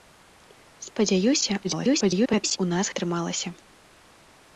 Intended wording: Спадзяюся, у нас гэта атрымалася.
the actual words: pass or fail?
fail